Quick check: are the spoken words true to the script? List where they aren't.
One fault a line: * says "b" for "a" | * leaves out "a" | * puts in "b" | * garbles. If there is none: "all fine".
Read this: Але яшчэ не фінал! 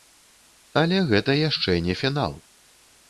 * puts in "гэта"